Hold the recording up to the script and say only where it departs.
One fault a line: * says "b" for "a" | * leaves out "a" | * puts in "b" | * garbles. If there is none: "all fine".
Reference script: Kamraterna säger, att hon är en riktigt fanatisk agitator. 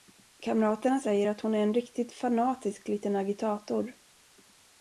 * puts in "liten"